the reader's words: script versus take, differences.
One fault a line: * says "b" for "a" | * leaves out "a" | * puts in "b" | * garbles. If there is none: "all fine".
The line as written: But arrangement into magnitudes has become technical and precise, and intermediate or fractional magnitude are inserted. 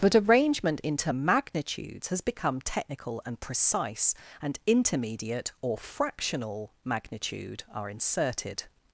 all fine